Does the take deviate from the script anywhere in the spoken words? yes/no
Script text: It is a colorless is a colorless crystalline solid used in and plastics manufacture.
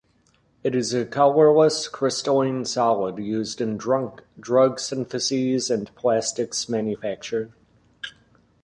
yes